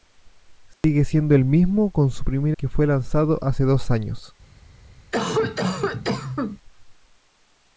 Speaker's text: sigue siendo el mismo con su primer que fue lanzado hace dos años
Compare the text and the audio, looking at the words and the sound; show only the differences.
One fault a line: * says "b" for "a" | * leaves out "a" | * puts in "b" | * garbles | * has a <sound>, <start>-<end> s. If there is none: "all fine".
* has a dropout, 0.7-0.8 s
* has a cough, 5.1-6.6 s